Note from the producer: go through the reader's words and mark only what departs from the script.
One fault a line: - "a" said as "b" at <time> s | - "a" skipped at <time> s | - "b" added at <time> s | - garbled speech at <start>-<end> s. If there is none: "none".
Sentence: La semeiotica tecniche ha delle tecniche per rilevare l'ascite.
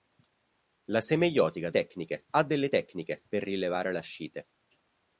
none